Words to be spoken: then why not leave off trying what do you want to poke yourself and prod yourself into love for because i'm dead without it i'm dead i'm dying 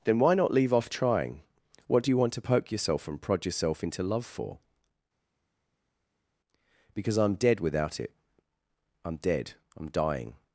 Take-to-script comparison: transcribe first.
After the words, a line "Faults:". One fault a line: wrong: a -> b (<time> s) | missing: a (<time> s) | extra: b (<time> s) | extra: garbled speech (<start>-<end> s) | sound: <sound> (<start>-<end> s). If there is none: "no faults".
then why not leave off trying what do you want to poke yourself and prod yourself into love for because i'm dead without it i'm dead i'm dying
Faults:
no faults